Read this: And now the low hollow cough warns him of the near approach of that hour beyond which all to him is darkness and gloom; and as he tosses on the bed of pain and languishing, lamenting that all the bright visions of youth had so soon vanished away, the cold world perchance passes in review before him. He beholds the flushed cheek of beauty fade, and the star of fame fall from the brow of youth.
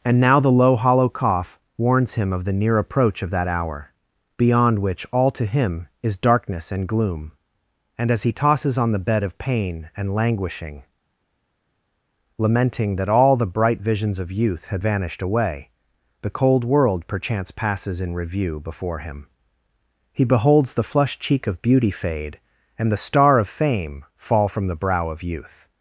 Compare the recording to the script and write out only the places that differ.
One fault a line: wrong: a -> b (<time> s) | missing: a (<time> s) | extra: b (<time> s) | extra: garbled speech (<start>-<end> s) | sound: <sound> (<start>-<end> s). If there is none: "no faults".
missing: so soon (14.8 s)